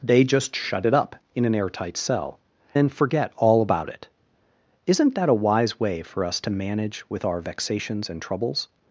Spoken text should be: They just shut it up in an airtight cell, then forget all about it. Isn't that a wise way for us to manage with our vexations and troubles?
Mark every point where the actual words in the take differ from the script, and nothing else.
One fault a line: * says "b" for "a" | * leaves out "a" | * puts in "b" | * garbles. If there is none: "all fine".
all fine